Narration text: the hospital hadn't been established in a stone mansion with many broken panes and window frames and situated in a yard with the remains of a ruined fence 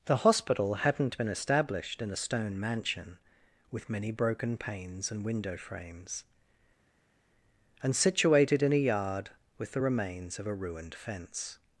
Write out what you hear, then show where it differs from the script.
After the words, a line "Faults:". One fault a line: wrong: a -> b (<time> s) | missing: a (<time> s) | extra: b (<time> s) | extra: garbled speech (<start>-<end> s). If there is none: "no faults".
the hospital hadn't been established in a stone mansion with many broken panes and window frames and situated in a yard with the remains of a ruined fence
Faults:
no faults